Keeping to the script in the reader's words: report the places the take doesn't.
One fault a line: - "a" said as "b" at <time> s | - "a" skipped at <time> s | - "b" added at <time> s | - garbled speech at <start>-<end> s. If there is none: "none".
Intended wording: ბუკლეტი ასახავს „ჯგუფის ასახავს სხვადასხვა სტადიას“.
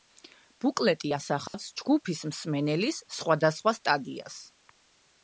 - "ასახავს" said as "მსმენელის" at 2.3 s